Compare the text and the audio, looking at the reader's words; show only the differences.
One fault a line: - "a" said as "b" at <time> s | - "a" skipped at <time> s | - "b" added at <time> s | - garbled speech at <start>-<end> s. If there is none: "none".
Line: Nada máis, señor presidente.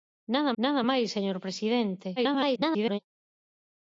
- "nada" added at 0.6 s
- garbled speech at 2.2-3.0 s